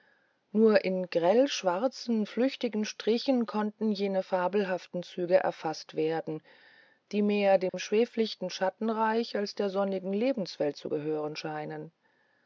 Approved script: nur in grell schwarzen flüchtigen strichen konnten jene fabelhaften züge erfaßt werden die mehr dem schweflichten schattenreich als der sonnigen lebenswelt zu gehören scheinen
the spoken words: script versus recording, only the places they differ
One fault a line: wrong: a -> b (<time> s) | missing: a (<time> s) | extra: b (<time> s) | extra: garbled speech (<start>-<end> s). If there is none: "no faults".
no faults